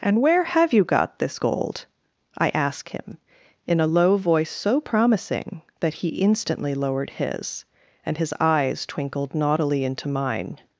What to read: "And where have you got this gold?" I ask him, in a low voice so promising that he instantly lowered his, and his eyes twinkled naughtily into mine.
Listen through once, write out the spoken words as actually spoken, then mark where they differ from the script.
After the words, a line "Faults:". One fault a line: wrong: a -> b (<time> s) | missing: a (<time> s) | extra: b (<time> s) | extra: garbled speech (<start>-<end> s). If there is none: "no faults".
"And where have you got this gold?" I ask him, in a low voice so promising that he instantly lowered his, and his eyes twinkled naughtily into mine.
Faults:
no faults